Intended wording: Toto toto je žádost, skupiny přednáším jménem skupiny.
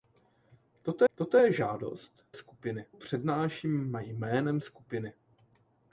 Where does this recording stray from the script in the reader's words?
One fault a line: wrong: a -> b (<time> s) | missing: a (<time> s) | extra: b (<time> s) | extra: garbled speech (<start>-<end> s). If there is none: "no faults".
no faults